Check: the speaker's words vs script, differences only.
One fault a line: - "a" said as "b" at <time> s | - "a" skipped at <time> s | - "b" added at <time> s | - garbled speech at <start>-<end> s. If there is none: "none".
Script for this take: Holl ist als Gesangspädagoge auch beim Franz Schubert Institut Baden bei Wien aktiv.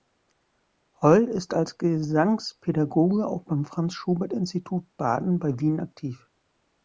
none